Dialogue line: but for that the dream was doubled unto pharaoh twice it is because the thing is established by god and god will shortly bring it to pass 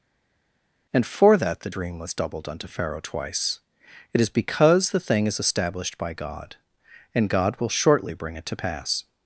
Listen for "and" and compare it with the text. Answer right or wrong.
right